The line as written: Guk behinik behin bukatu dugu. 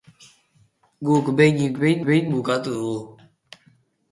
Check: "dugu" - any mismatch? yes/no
no